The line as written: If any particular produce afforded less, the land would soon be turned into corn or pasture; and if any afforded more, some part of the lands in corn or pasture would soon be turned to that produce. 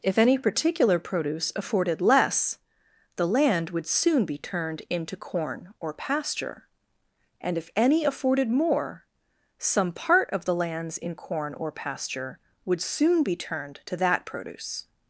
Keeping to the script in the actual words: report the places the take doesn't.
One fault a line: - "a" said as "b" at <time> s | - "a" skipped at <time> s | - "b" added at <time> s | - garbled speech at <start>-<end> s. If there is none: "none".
none